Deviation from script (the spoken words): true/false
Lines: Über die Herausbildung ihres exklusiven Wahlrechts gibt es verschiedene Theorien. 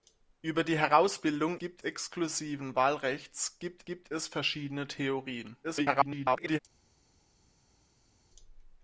true